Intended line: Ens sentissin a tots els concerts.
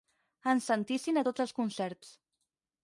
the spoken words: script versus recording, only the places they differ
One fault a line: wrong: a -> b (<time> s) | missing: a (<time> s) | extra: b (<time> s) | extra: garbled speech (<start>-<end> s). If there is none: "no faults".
no faults